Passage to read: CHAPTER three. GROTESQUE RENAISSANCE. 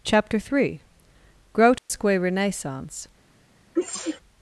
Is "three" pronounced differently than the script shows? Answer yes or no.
no